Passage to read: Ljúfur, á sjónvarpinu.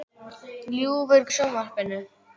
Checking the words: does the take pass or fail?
pass